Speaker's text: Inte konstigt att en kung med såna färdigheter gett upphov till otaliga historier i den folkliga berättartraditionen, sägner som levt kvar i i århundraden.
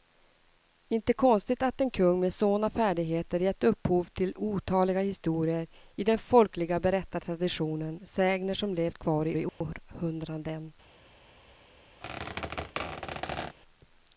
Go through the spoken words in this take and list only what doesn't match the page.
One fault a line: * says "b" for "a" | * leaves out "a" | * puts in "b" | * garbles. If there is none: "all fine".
all fine